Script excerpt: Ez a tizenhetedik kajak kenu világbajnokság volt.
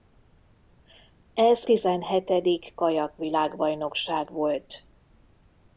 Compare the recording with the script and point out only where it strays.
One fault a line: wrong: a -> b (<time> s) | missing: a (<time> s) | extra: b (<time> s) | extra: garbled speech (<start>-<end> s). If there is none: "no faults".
missing: a (1.7 s)
missing: kenu (3.2 s)